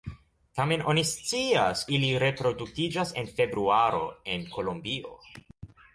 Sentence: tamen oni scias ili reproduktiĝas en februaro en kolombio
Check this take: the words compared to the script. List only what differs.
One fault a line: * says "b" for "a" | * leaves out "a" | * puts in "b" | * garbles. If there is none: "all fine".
all fine